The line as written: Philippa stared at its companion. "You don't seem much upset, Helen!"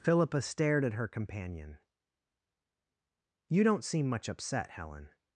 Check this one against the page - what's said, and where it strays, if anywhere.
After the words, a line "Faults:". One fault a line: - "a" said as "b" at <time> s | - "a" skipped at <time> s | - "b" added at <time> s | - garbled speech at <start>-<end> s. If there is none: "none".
Philippa stared at her companion. "You don't seem much upset, Helen!"
Faults:
- "its" said as "her" at 0.9 s